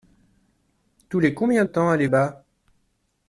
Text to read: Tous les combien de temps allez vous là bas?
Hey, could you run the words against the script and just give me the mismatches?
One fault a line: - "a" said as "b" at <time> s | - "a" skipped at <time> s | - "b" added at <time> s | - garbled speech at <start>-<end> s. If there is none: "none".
- "de" skipped at 1.6 s
- "vous là" skipped at 2.1 s